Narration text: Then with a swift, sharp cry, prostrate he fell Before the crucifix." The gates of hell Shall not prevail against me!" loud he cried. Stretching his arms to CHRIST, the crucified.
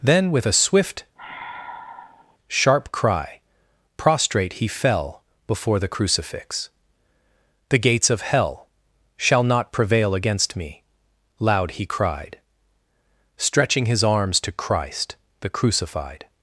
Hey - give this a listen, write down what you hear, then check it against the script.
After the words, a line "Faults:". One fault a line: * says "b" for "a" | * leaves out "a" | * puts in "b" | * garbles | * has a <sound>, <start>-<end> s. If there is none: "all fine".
Then with a swift, sharp cry, prostrate he fell Before the crucifix." The gates of hell Shall not prevail against me!" loud he cried. Stretching his arms to CHRIST, the crucified.
Faults:
* has a sigh, 1.2-2.4 s